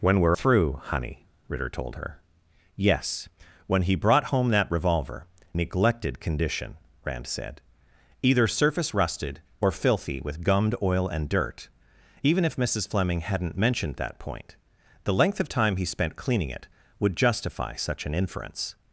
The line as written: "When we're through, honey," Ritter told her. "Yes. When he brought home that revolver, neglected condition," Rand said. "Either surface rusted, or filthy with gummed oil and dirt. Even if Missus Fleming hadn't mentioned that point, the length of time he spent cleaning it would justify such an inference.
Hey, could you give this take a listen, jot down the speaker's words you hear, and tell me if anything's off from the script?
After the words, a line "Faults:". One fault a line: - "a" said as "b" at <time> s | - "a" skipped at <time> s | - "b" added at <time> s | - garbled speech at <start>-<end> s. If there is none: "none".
"When we're through, honey," Ritter told her. "Yes. When he brought home that revolver, neglected condition," Rand said. "Either surface rusted, or filthy with gummed oil and dirt. Even if Missus Fleming hadn't mentioned that point, the length of time he spent cleaning it would justify such an inference.
Faults:
none